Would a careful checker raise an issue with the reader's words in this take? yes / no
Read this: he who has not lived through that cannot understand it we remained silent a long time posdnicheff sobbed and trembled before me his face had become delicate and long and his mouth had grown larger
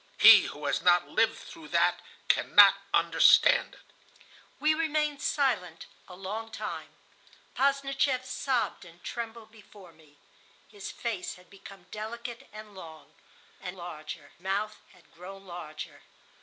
yes